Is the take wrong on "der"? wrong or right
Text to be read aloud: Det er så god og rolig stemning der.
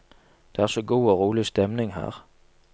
wrong